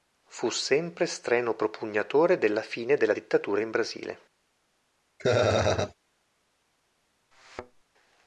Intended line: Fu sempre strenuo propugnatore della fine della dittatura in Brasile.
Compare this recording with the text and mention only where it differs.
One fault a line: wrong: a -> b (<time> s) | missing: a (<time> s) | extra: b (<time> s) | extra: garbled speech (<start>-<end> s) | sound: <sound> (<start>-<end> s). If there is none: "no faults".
sound: laugh (5.2-5.9 s)
sound: thud (7.3-7.8 s)